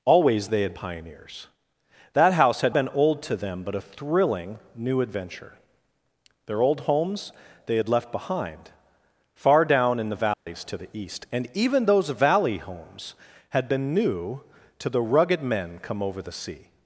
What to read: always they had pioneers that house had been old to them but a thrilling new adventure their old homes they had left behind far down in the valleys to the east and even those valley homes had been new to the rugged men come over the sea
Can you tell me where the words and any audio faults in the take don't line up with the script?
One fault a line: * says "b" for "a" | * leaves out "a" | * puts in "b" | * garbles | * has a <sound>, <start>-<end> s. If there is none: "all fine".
* has a dropout, 10.3-10.5 s